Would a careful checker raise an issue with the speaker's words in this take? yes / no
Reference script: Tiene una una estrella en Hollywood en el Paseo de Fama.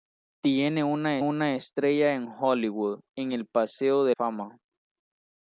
no